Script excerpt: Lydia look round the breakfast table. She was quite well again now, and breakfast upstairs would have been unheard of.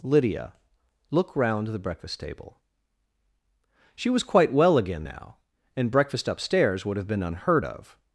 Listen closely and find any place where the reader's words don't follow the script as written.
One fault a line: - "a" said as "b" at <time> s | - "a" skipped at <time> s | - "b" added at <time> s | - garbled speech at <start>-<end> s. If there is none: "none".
none